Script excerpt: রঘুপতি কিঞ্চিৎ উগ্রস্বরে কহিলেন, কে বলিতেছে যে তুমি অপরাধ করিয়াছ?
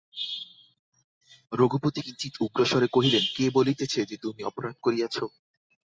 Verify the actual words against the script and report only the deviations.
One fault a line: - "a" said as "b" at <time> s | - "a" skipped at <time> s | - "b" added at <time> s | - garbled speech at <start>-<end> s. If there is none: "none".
none